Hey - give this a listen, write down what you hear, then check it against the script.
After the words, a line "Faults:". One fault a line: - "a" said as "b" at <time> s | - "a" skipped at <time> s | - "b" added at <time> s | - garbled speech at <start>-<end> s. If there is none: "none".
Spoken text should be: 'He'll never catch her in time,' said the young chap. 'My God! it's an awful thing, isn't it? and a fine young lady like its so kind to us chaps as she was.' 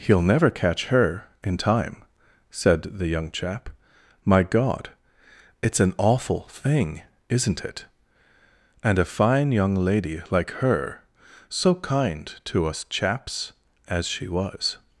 'He'll never catch her in time,' said the young chap. 'My God! it's an awful thing, isn't it? and a fine young lady like her so kind to us chaps as she was.'
Faults:
- "its" said as "her" at 10.5 s